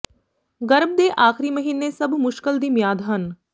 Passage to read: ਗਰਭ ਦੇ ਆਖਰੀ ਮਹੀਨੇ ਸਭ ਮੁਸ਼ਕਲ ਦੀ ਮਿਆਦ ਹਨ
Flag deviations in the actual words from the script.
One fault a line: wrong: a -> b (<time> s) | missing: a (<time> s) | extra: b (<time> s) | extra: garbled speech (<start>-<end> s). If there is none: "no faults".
no faults